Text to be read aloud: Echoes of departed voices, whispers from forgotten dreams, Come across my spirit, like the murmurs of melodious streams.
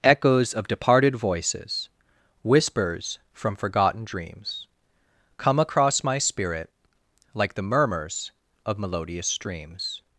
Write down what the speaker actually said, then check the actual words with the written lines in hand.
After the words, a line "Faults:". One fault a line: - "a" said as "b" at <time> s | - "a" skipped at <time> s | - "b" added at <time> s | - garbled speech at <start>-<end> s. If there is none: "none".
Echoes of departed voices, whispers from forgotten dreams, Come across my spirit, like the murmurs of melodious streams.
Faults:
none